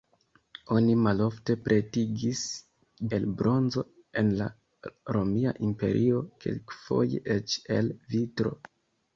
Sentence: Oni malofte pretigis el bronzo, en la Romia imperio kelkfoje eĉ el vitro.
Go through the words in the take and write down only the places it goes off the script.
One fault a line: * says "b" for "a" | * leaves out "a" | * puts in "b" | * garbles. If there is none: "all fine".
all fine